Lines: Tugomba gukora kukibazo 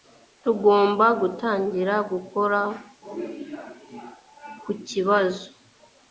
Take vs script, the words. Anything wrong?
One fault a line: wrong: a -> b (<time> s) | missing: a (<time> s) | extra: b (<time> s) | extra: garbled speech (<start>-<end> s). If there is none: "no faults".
extra: gutangira (1.2 s)